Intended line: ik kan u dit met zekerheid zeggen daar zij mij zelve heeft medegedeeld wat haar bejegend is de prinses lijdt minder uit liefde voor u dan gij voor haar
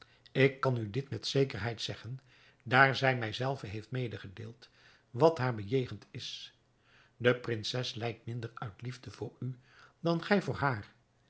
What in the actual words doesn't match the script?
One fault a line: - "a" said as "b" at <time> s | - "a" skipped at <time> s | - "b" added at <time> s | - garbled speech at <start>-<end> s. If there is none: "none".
none